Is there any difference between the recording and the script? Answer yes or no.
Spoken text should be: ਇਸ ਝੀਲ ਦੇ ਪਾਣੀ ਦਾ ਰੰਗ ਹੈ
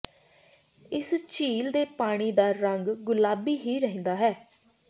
yes